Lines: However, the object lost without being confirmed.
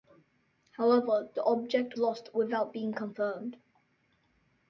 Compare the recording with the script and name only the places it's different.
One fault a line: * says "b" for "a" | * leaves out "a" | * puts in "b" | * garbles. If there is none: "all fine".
all fine